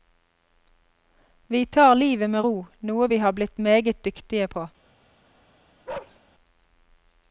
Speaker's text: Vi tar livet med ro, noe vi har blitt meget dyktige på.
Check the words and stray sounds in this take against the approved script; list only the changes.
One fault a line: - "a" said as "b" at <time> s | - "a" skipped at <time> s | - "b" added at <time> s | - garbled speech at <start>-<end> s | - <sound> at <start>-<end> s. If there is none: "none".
- bark at 5.9-6.2 s